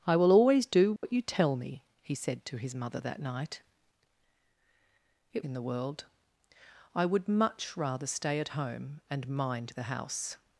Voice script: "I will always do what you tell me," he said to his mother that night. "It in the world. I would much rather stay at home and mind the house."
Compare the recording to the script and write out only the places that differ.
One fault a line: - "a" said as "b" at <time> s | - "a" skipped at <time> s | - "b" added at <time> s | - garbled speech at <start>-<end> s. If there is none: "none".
none